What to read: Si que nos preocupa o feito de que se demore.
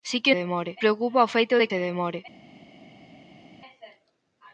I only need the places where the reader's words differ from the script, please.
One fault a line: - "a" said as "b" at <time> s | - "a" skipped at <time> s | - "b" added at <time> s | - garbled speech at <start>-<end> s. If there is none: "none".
- "nos" said as "demore" at 0.4 s
- "que" skipped at 1.7 s